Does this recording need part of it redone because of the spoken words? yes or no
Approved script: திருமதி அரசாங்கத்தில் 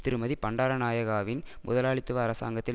yes